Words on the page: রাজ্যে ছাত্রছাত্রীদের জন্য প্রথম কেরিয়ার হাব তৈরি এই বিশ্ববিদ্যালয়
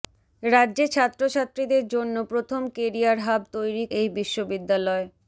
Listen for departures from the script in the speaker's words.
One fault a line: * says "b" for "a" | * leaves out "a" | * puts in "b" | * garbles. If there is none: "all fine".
all fine